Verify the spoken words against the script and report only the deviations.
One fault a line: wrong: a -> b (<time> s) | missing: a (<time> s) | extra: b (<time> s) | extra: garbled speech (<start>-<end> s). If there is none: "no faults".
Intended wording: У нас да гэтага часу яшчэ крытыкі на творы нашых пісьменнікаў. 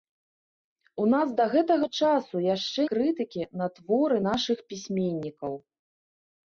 no faults